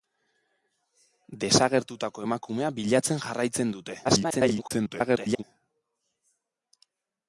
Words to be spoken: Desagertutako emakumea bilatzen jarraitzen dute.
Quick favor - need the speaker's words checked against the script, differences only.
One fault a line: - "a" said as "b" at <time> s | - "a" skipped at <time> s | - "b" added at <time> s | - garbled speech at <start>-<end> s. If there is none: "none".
- garbled speech at 4.0-5.4 s